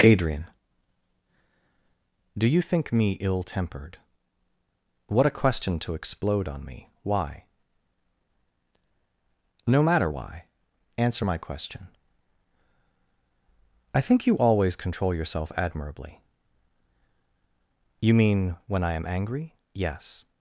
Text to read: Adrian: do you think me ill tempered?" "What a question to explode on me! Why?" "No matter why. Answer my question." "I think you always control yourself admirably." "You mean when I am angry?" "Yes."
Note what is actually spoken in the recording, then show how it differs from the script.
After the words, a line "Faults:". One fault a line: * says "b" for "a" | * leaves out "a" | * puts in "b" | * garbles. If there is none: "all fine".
Adrian: do you think me ill tempered?" "What a question to explode on me! Why?" "No matter why. Answer my question." "I think you always control yourself admirably." "You mean when I am angry?" "Yes."
Faults:
all fine